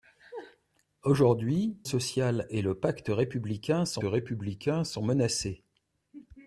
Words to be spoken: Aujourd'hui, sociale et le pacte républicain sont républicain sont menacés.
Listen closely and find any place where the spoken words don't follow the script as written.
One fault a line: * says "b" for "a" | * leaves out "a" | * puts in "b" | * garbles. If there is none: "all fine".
all fine